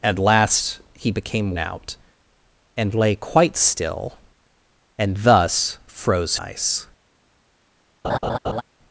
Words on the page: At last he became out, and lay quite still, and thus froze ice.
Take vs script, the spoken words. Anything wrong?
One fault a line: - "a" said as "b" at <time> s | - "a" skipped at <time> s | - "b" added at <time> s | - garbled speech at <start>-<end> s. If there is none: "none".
none